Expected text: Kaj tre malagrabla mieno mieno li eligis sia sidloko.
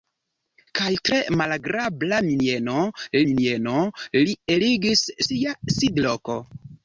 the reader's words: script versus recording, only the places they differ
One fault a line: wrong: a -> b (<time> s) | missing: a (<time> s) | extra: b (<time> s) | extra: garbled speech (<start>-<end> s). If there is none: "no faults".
no faults